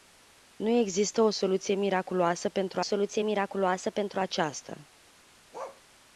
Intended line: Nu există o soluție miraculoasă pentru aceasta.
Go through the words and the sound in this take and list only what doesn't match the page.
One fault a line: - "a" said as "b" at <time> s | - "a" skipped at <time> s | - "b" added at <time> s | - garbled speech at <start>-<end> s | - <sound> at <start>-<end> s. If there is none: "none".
- "soluție miraculoasă pentru" added at 2.8 s
- bark at 5.5-5.8 s